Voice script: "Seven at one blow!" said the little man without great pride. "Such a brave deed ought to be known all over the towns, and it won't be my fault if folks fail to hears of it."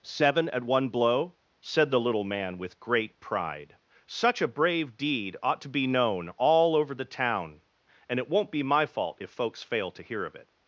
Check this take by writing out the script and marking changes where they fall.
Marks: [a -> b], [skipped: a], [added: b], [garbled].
"Seven at one blow!" said the little man [without -> with] great pride. "Such a brave deed ought to be known all over the [towns, -> town] and it won't be my fault if folks fail to [hears -> hear] of it."